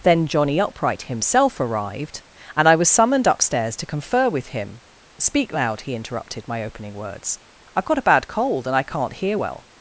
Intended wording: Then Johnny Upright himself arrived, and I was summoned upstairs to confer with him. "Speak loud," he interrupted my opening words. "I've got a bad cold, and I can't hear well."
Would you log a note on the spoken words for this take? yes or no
no